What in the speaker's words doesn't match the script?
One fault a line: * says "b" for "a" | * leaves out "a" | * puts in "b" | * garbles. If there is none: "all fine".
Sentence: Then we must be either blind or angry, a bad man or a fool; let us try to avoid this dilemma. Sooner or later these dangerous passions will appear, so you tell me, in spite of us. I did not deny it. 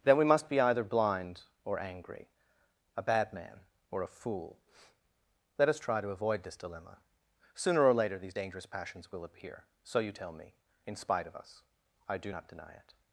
* says "do" for "did"